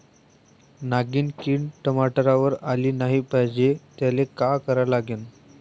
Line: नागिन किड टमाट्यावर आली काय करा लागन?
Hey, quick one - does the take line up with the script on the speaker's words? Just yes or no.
no